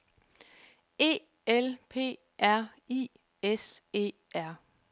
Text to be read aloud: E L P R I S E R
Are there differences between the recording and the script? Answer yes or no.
no